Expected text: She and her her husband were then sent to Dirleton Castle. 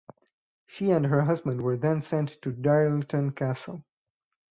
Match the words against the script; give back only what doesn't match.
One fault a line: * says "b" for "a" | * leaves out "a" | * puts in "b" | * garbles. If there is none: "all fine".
* leaves out "her"